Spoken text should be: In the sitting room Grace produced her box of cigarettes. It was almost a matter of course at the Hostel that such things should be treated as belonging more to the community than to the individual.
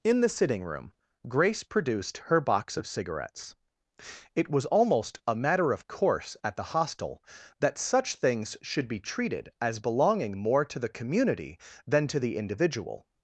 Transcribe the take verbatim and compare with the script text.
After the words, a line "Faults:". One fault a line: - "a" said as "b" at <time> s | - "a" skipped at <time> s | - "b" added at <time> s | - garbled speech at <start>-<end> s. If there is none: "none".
In the sitting room Grace produced her box of cigarettes. It was almost a matter of course at the Hostel that such things should be treated as belonging more to the community than to the individual.
Faults:
none